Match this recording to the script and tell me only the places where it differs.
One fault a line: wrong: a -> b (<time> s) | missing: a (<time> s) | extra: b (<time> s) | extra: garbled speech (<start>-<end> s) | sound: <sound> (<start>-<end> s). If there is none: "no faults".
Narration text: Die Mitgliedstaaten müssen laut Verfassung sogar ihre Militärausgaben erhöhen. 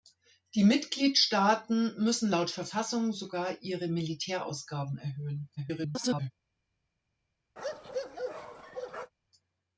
extra: garbled speech (5.6-6.3 s)
sound: bark (7.6-9.1 s)